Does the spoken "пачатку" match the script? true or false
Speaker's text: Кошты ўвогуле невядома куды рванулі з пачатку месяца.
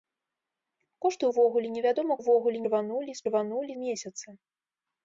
false